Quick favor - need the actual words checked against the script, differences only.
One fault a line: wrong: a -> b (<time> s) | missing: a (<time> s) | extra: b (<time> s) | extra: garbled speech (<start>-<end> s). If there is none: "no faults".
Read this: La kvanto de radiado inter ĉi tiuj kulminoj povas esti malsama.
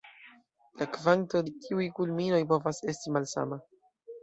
missing: de radiado inter (1.4 s)